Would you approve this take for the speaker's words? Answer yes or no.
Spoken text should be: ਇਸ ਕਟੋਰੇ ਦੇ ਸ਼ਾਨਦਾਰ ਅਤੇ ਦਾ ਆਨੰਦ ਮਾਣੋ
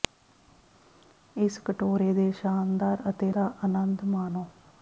yes